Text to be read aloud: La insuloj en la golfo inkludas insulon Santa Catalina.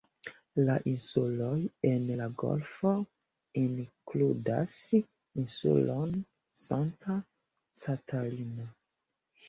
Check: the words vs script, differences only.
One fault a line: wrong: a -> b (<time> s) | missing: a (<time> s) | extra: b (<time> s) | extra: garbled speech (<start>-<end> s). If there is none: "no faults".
no faults